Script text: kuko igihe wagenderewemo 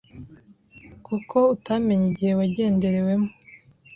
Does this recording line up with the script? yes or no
no